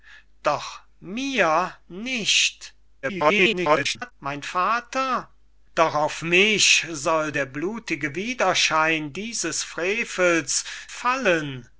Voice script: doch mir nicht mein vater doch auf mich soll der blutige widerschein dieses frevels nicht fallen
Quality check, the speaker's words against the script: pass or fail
fail